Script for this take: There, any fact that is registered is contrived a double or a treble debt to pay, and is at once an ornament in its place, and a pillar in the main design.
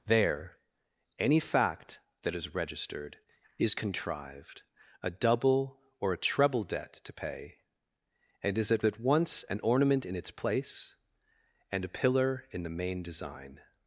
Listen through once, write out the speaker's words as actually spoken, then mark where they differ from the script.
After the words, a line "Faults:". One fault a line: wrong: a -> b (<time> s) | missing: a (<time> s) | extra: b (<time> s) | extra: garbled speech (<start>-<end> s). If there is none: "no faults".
There, any fact that is registered is contrived a double or a treble debt to pay, and is at at once an ornament in its place, and a pillar in the main design.
Faults:
extra: at (8.8 s)